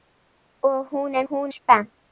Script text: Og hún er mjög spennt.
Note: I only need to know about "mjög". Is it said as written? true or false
false